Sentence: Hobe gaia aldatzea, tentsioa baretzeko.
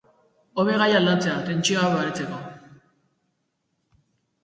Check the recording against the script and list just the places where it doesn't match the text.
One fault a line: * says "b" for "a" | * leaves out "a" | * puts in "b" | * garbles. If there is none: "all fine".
all fine